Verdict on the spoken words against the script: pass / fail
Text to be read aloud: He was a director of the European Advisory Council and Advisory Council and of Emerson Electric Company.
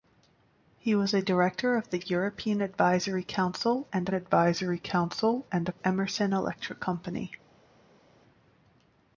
pass